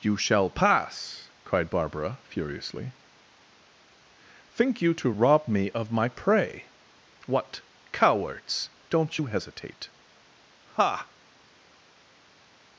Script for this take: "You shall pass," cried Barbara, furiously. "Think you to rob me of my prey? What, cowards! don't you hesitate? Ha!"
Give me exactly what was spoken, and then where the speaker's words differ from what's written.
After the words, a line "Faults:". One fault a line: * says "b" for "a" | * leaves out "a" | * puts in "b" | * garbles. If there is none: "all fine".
"You shall pass," cried Barbara, furiously. "Think you to rob me of my prey? What, cowards! don't you hesitate? Ha!"
Faults:
all fine